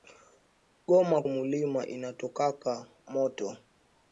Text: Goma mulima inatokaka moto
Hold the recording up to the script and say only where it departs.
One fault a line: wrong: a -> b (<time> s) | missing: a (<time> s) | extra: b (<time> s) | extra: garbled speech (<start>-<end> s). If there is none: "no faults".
no faults